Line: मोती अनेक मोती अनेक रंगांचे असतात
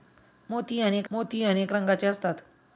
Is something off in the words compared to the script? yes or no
no